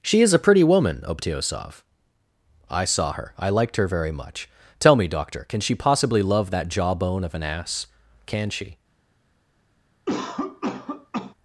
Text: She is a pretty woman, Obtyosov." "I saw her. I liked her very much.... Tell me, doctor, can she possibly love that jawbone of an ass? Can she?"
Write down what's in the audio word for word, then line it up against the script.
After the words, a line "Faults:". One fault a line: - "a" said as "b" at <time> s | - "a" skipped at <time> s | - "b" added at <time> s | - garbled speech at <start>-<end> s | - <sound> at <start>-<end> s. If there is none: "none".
She is a pretty woman, Obtyosov." "I saw her. I liked her very much.... Tell me, doctor, can she possibly love that jawbone of an ass? Can she?"
Faults:
- cough at 10.1-11.3 s